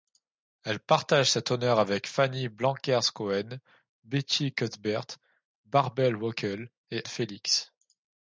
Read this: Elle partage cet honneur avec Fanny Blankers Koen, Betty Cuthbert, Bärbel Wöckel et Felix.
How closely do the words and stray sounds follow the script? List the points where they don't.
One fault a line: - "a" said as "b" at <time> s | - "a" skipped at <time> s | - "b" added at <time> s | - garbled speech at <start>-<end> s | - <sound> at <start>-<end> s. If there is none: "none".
none